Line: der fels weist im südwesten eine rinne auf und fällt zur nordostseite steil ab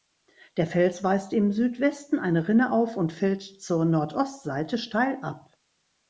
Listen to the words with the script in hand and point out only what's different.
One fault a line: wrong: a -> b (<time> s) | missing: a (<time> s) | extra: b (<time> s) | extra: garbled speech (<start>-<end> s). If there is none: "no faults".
no faults